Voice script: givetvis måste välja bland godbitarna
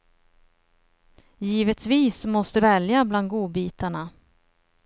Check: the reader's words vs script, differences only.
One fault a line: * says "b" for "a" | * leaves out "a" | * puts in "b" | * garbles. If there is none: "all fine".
all fine